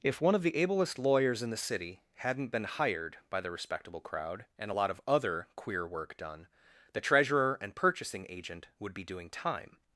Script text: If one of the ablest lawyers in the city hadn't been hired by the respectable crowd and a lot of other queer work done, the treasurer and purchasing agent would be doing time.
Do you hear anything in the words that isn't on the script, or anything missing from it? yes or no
no